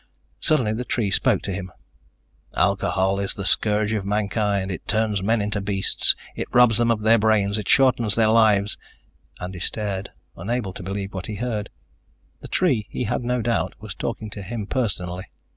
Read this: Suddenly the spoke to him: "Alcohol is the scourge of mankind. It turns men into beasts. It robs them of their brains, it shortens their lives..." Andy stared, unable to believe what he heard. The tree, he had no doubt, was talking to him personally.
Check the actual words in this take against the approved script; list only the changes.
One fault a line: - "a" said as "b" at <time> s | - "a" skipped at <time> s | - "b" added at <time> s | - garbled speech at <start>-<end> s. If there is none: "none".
- "tree" added at 0.8 s